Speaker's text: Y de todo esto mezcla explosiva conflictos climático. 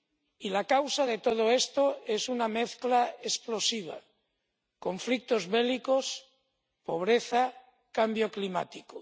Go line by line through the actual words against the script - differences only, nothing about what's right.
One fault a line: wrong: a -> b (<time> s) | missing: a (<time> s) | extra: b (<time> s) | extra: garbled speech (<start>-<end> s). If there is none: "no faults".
extra: la causa (0.5 s)
extra: es una (2.1 s)
extra: bélicos pobreza cambio (5.6 s)